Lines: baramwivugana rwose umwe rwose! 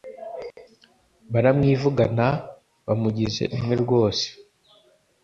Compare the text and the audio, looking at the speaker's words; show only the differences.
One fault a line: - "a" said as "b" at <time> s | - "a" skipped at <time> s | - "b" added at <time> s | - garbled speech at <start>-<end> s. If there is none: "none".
- "rwose" said as "bamugize" at 2.9 s